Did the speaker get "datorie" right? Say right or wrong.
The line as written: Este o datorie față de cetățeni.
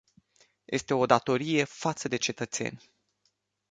right